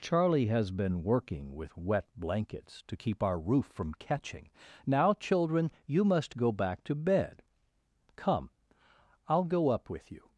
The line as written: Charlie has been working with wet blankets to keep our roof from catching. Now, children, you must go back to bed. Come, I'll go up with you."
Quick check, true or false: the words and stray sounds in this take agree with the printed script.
true